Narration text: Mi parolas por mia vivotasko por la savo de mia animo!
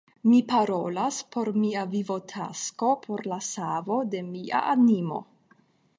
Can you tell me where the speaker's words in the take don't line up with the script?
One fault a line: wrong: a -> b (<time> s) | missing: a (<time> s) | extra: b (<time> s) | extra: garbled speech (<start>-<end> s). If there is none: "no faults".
no faults